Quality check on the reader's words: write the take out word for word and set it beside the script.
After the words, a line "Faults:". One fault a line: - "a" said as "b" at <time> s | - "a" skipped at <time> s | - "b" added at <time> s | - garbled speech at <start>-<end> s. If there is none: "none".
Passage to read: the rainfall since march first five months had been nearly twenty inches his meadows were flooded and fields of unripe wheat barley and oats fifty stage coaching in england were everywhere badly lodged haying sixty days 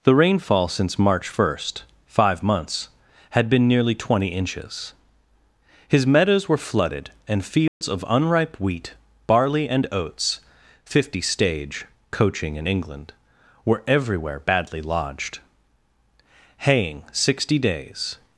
the rainfall since march first five months had been nearly twenty inches his meadows were flooded and fields of unripe wheat barley and oats fifty stage coaching in england were everywhere badly lodged haying sixty days
Faults:
none